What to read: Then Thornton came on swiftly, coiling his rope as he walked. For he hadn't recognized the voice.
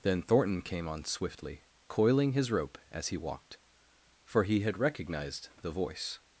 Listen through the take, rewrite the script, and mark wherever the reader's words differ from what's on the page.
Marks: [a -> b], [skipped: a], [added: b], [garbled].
Then Thornton came on swiftly, coiling his rope as he walked. For he [hadn't -> had] recognized the voice.